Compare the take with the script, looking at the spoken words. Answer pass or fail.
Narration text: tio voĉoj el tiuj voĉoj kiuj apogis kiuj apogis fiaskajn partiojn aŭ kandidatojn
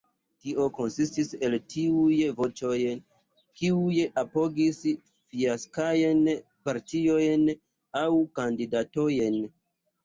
fail